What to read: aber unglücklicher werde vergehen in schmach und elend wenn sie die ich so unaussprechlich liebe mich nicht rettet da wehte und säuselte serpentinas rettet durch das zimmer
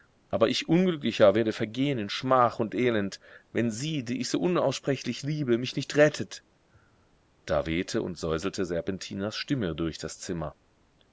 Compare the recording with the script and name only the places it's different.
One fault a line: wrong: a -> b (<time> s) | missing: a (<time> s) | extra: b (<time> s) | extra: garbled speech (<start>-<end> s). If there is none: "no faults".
extra: ich (0.5 s)
wrong: rettet -> stimme (9.4 s)